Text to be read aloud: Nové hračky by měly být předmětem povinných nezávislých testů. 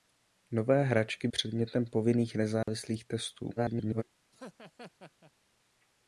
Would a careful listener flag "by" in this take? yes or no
yes